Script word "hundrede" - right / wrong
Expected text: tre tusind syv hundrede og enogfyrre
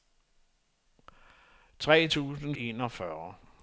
wrong